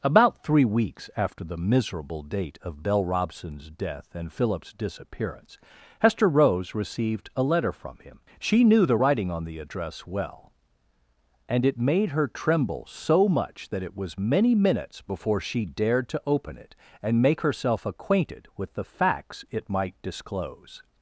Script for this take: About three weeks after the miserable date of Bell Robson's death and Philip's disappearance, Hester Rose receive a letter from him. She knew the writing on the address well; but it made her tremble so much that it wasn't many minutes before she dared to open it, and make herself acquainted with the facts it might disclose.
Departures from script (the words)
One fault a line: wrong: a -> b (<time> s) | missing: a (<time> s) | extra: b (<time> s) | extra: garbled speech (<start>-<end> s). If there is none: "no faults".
wrong: receive -> received (6.7 s)
wrong: but -> and (11.5 s)
wrong: wasn't -> was (14.0 s)